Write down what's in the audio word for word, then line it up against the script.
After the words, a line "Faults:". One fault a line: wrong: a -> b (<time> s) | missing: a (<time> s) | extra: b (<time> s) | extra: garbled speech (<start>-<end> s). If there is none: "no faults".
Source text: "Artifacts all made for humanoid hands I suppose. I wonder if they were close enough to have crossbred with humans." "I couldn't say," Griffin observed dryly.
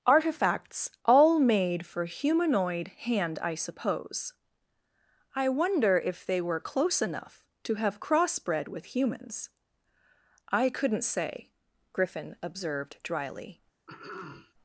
"Artifacts all made for humanoid hand I suppose. I wonder if they were close enough to have crossbred with humans." "I couldn't say," Griffin observed dryly.
Faults:
wrong: hands -> hand (2.9 s)